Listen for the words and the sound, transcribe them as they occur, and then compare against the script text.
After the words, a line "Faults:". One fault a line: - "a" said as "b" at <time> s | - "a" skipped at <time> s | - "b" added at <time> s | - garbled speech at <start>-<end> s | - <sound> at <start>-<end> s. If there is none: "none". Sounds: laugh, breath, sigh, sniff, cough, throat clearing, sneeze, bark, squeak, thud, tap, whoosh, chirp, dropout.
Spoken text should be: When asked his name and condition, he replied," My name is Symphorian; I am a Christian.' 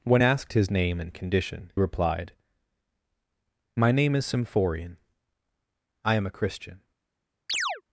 When asked his name and condition, replied," My name is Symphorian; I am a Christian.'
Faults:
- "he" skipped at 1.7 s
- chirp at 7.5-7.8 s